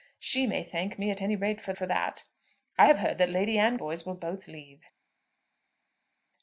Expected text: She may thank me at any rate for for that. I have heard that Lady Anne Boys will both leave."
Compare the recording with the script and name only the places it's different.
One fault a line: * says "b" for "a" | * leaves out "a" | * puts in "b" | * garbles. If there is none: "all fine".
all fine